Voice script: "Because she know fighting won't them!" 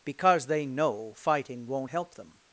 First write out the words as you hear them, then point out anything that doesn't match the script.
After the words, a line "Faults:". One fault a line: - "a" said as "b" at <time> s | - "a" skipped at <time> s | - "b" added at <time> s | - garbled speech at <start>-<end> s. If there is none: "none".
"Because they know fighting won't help them!"
Faults:
- "she" said as "they" at 0.5 s
- "help" added at 1.9 s